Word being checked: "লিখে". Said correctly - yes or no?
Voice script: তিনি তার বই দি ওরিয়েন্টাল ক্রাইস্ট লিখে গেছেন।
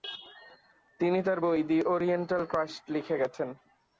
yes